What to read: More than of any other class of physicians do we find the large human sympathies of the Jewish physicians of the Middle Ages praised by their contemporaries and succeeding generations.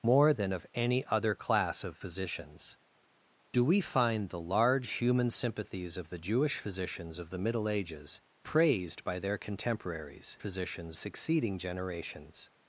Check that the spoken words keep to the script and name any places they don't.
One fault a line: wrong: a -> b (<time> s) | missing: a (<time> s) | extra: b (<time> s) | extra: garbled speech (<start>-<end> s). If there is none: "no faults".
wrong: and -> physicians (10.4 s)